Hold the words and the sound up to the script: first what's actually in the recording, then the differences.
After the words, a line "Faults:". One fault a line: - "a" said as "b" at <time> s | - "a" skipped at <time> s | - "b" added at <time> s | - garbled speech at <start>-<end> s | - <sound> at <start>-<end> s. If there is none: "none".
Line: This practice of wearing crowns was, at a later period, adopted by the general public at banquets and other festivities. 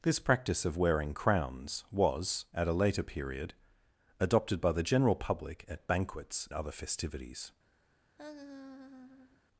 This practice of wearing crowns was, at a later period, adopted by the general public at banquets other festivities.
Faults:
- "and" skipped at 6.5 s
- laugh at 8.2-9.4 s